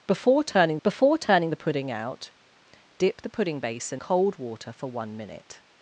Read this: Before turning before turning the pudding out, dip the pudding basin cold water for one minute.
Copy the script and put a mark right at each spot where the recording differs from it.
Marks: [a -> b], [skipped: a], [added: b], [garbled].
Before turning before turning the pudding out, dip the pudding basin cold water for one minute.